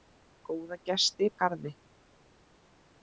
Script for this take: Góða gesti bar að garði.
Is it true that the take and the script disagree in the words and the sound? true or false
true